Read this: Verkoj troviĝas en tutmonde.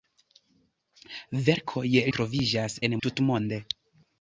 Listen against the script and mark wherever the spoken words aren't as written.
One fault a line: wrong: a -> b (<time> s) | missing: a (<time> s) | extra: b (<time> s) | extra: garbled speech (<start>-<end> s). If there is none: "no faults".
no faults